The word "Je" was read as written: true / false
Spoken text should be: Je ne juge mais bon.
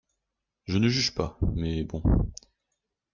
true